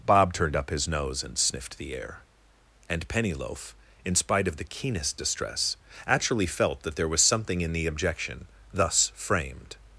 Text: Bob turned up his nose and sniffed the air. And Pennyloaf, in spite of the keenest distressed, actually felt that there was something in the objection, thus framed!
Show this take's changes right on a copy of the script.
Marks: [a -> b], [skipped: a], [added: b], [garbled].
Bob turned up his nose and sniffed the air. And Pennyloaf, in spite of the keenest [distressed, -> distress] actually felt that there was something in the objection, thus framed!